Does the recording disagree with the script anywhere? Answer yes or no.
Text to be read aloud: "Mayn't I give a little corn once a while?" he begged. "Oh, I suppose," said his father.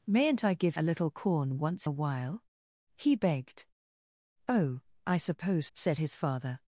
no